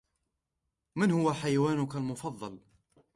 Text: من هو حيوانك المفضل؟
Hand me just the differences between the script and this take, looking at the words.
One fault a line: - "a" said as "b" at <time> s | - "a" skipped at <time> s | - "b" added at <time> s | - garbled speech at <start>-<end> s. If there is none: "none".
none